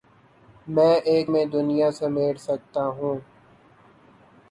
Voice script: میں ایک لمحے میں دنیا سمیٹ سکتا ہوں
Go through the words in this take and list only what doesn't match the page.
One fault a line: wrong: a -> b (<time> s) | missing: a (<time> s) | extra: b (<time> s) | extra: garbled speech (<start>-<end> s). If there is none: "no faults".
missing: لمحے (1.3 s)